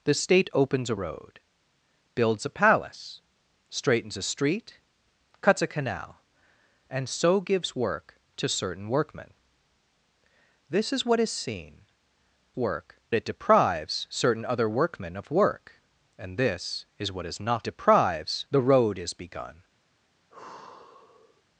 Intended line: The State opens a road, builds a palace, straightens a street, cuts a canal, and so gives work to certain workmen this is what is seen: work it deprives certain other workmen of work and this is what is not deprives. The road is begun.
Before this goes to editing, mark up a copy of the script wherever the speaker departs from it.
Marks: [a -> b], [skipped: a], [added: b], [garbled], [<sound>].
The State opens a road, builds a palace, straightens a street, cuts a canal, and so gives work to certain workmen this is what is seen: work it deprives certain other workmen of work and this is what is not deprives. The road is begun. [sigh]